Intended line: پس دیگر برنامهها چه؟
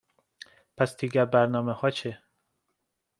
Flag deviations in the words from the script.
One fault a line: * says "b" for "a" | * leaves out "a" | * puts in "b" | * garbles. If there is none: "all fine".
all fine